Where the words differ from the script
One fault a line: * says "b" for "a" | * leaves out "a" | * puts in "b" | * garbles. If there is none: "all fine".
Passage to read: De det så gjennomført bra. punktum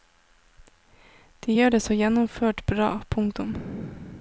* puts in "gjør"